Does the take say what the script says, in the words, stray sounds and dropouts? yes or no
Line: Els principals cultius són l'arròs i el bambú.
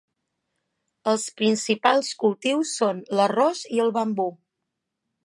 yes